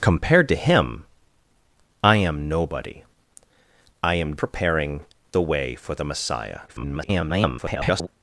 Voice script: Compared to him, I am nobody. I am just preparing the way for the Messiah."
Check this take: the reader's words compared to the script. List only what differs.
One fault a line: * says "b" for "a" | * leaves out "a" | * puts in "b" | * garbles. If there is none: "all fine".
* leaves out "just"
* garbles